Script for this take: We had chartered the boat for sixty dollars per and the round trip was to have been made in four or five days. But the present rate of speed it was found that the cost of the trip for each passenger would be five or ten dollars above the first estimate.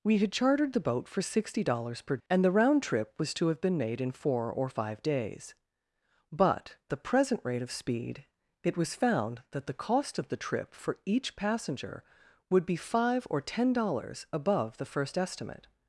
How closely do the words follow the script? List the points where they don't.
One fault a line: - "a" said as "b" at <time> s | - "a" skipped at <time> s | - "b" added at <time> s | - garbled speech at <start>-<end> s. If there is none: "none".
none